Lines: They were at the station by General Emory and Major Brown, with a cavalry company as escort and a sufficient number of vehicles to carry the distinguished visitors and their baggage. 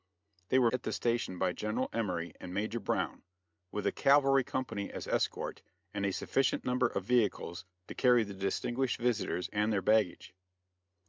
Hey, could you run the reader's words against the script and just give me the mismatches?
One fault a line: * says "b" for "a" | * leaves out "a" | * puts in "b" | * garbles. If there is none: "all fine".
all fine